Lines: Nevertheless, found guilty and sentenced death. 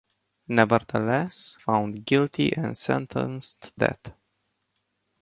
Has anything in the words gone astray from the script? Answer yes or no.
no